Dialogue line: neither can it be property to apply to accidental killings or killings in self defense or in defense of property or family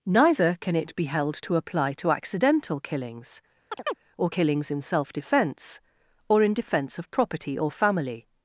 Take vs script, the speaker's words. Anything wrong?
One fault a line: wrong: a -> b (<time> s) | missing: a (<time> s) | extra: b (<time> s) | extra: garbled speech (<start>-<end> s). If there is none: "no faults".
wrong: property -> held (1.0 s)